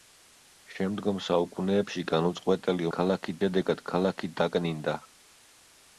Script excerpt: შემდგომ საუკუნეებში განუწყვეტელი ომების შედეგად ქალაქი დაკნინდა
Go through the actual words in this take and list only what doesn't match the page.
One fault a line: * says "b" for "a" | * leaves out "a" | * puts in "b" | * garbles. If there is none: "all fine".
* says "ქალაქი" for "ომების"